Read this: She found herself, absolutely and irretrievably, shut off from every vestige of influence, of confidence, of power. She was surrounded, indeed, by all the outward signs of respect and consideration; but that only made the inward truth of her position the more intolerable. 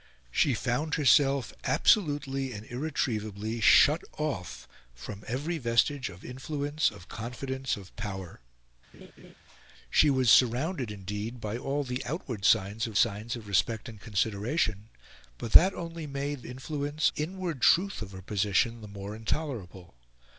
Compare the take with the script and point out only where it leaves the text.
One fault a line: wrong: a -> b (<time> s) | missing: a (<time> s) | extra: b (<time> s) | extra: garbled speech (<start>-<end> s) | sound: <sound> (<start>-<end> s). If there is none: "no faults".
sound: laugh (8.9-9.3 s)
extra: signs of (13.0 s)
wrong: the -> influence (16.5 s)